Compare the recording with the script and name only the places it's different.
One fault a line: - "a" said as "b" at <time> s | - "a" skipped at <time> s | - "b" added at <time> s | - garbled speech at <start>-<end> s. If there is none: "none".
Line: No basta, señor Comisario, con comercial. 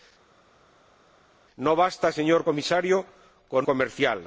none